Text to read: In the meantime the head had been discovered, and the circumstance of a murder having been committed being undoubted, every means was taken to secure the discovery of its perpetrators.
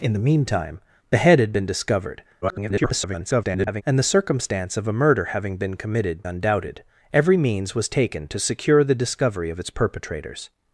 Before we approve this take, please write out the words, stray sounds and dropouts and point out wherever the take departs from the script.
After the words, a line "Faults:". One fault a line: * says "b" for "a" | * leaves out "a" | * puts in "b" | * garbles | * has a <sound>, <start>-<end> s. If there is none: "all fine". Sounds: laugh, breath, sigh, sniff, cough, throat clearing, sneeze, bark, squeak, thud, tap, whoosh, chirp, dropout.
In the meantime the head had been discovered, [garbled] and the circumstance of a murder having been committed undoubted, every means was taken to secure the discovery of its perpetrators.
Faults:
* garbles
* leaves out "being"